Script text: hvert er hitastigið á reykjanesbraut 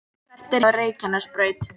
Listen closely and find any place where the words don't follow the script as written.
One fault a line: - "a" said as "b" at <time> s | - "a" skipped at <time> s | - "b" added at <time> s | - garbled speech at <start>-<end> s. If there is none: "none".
- "hitastigið" skipped at 0.7 s